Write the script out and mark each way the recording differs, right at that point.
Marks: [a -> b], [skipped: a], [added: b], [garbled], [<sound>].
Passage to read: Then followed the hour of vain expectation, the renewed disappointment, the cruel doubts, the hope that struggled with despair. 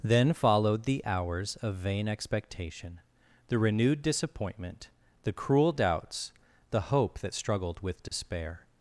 Then followed the [hour -> hours] of vain expectation, the renewed disappointment, the cruel doubts, the hope that struggled with despair. [dropout]